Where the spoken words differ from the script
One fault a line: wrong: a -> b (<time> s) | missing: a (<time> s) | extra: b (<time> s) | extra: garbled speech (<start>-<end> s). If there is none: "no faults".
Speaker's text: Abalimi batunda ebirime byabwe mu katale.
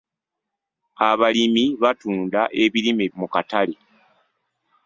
missing: byabwe (3.0 s)